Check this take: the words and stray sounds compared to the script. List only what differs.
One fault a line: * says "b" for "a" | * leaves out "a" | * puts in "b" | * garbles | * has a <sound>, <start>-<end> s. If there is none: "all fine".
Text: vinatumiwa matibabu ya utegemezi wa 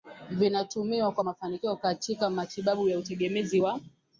* puts in "kwa mafanikio katika"